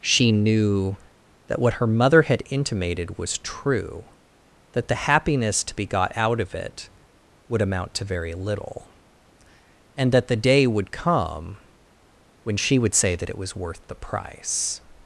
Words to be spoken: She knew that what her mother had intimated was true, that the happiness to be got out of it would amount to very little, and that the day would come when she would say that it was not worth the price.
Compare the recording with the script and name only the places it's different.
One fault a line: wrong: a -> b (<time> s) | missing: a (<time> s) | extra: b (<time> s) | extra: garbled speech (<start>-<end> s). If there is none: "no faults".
missing: not (13.6 s)